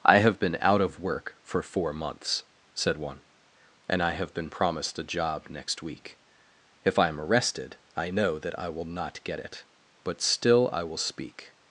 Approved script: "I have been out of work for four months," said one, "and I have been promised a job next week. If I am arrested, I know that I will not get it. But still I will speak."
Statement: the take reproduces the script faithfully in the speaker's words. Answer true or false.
true